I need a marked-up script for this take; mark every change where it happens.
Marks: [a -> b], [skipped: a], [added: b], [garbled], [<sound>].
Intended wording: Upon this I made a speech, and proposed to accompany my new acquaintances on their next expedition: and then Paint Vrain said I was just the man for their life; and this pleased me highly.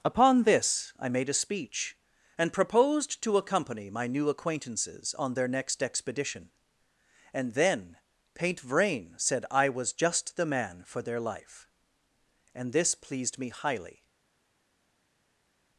Upon this I made a speech, and proposed to accompany my new acquaintances on their next expedition: and then Paint Vrain said I was just the man for their life; and this pleased me highly.